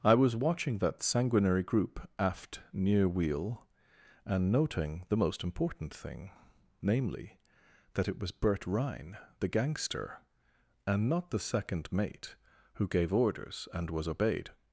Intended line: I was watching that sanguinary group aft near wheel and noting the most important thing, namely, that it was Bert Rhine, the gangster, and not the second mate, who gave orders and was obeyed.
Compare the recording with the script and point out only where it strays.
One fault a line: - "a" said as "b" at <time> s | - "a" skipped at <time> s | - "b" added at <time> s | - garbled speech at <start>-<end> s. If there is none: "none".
none